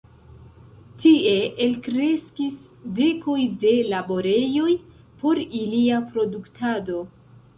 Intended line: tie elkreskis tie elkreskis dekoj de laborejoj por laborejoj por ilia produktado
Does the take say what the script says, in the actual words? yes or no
no